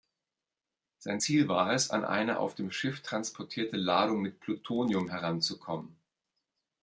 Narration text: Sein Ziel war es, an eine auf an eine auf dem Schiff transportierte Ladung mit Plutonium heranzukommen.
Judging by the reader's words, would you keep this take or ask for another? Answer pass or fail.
fail